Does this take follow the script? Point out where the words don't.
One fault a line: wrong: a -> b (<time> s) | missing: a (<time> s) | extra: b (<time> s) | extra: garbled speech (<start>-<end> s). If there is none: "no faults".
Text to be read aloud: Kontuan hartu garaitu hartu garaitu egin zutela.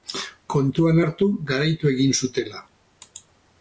missing: hartu garaitu (1.9 s)